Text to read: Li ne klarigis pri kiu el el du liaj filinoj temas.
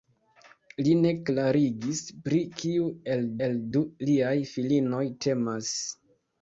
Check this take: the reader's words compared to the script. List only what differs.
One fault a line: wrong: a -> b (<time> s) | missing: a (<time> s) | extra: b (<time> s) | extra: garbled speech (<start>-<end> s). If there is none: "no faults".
no faults